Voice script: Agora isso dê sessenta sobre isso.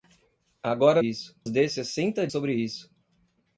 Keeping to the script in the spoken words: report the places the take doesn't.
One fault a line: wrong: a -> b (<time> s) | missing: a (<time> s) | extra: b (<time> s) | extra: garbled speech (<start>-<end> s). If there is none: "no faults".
no faults